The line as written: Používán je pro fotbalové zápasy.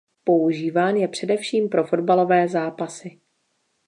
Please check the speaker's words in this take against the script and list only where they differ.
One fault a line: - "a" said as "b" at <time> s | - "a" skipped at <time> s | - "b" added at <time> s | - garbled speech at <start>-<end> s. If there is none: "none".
- "především" added at 1.1 s